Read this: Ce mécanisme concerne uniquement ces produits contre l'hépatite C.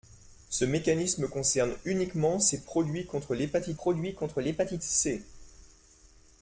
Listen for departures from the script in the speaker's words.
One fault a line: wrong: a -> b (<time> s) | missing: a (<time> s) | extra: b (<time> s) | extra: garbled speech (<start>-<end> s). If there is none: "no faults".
extra: produits contre l'hépatite (3.7 s)